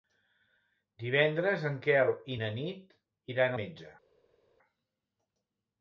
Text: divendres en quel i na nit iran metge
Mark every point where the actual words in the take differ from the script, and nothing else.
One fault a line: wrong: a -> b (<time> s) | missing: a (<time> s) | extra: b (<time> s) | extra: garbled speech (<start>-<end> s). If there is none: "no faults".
no faults